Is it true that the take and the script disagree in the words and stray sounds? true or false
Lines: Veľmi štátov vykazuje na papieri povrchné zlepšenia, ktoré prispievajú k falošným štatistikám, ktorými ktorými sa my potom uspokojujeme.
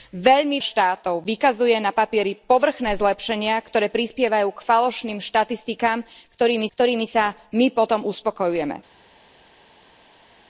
false